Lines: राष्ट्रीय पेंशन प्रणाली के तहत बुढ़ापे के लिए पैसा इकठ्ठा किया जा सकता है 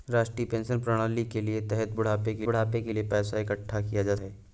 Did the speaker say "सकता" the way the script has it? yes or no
no